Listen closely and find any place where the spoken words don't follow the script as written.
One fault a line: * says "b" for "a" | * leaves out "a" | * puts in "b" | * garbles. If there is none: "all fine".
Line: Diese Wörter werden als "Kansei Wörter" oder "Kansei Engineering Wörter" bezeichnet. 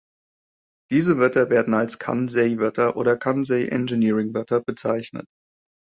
all fine